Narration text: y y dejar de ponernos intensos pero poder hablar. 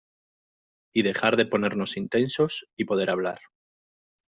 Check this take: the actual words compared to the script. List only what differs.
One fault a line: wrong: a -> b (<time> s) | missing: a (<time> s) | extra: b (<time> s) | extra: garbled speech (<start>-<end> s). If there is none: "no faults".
missing: y (1.0 s)
wrong: pero -> y (2.8 s)